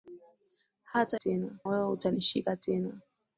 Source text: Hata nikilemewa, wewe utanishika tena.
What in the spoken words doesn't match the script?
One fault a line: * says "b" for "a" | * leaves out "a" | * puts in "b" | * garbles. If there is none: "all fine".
* says "tena" for "nikilemewa"